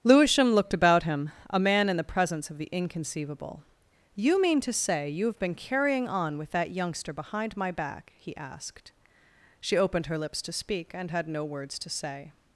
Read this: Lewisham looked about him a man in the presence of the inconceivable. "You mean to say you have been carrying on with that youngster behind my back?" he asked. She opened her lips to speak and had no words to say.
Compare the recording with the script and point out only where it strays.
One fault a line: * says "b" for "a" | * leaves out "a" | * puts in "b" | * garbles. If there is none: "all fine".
all fine